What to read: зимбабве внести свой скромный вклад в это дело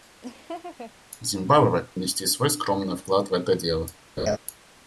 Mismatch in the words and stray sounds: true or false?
true